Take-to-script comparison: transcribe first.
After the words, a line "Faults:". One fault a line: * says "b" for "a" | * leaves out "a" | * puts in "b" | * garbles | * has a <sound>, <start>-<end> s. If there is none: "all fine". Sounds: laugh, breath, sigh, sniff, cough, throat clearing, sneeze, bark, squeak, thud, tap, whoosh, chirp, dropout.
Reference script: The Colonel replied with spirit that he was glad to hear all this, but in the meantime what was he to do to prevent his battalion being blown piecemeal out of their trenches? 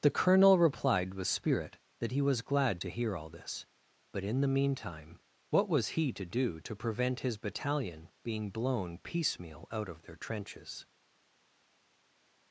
The Colonel replied with spirit that he was glad to hear all this, but in the meantime what was he to do to prevent his battalion being blown piecemeal out of their trenches?
Faults:
all fine